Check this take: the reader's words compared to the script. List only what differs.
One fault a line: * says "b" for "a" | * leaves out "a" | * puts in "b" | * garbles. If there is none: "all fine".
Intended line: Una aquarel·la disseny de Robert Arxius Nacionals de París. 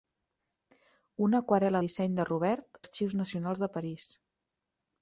all fine